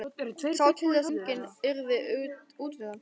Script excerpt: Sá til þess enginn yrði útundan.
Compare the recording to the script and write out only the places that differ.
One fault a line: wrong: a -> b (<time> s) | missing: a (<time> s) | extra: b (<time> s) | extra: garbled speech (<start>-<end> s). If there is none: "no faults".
no faults